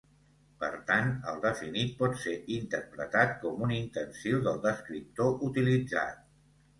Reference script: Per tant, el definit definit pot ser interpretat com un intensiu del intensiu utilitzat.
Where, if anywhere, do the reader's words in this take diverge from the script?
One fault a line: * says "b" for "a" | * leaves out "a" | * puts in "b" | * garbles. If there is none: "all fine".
* leaves out "definit"
* says "descriptor" for "intensiu"